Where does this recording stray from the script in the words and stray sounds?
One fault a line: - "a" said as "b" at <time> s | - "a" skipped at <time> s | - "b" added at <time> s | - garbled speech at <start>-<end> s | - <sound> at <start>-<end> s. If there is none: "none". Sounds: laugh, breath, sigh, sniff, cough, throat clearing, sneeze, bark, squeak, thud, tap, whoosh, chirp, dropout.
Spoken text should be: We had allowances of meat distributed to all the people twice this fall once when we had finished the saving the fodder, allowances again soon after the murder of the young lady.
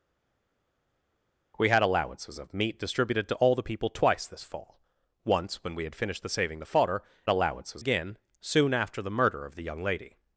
none